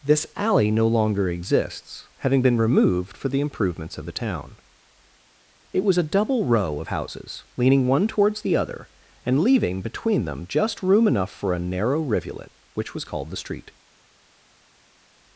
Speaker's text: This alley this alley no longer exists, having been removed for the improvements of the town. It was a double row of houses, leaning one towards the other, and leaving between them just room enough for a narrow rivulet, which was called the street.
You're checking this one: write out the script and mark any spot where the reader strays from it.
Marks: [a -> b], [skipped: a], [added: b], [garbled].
This alley [skipped: this alley] no longer exists, having been removed for the improvements of the town. It was a double row of houses, leaning one towards the other, and leaving between them just room enough for a narrow rivulet, which was called the street.